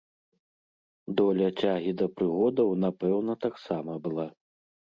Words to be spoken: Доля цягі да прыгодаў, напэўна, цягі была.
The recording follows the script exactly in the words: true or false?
false